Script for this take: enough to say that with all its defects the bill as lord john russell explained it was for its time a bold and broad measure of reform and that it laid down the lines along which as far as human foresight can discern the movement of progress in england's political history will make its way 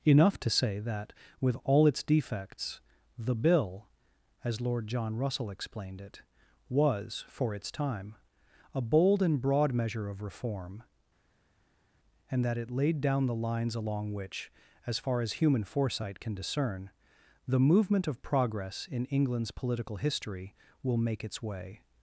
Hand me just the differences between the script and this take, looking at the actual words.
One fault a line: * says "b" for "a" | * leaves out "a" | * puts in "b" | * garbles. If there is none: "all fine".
all fine